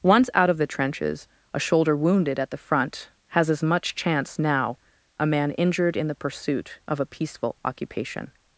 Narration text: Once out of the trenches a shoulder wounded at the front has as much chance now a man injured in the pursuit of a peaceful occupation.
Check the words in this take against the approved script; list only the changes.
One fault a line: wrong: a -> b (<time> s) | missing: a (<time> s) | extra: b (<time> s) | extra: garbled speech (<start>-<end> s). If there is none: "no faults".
no faults